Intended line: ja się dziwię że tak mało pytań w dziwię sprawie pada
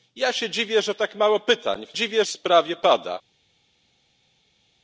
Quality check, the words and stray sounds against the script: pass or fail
pass